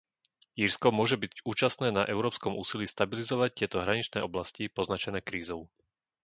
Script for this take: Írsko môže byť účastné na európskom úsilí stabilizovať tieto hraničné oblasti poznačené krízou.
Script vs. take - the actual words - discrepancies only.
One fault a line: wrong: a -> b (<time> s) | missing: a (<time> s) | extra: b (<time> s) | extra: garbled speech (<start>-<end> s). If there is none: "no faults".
no faults